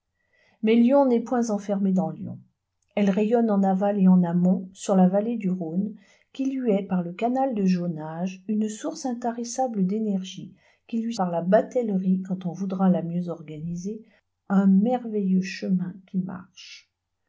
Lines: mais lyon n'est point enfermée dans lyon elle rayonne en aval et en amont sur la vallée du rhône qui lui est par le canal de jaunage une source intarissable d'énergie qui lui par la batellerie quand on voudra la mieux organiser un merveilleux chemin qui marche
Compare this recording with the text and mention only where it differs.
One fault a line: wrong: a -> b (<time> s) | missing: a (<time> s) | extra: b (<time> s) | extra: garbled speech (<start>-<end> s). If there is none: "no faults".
no faults